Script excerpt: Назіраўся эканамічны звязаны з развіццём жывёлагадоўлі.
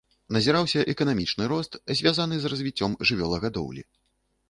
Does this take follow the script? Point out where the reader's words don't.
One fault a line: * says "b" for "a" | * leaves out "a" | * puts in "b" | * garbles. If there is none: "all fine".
* puts in "рост"